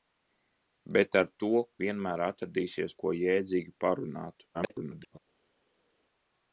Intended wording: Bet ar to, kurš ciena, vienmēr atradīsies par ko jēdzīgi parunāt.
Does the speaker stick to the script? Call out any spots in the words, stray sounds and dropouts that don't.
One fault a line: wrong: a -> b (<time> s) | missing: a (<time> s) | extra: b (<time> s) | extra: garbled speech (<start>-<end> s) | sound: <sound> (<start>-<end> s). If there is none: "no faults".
missing: kurš ciena (1.5 s)
missing: par (3.0 s)
extra: garbled speech (4.5-5.2 s)